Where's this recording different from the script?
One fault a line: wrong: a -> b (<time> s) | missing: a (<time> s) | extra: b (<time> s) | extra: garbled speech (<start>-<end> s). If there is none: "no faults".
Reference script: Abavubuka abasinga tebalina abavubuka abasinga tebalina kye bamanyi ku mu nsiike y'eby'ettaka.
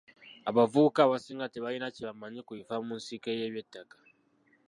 missing: abavubuka abasinga tebalina (1.9 s)
extra: bifa (2.6 s)